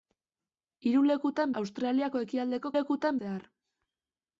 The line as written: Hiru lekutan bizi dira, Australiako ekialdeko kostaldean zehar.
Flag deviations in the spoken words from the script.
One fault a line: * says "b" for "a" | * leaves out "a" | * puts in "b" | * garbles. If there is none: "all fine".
* leaves out "bizi dira"
* says "lekutan" for "kostaldean"